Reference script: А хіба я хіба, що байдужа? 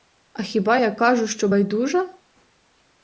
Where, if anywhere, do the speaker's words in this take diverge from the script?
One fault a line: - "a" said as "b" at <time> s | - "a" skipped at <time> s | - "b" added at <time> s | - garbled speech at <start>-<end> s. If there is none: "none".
- "хіба" said as "кажу" at 0.9 s